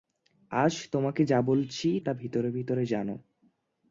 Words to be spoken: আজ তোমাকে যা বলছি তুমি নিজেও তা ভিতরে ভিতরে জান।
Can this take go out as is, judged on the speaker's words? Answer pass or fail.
fail